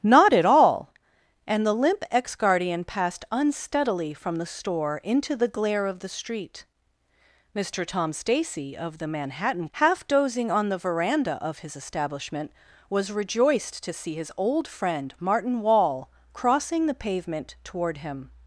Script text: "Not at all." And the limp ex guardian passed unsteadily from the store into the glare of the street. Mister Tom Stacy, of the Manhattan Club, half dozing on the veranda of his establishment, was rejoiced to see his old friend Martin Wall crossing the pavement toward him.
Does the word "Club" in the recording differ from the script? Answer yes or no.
yes